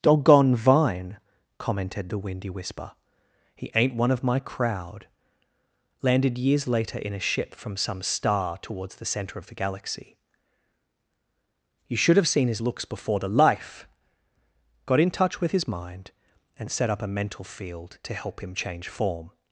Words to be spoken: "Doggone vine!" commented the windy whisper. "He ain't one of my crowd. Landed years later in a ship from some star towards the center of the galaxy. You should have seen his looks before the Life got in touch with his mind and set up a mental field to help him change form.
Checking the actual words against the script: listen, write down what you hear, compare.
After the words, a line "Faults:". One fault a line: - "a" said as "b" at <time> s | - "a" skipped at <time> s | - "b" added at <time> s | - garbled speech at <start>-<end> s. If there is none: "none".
"Doggone vine!" commented the windy whisper. "He ain't one of my crowd. Landed years later in a ship from some star towards the center of the galaxy. You should have seen his looks before the Life got in touch with his mind and set up a mental field to help him change form.
Faults:
none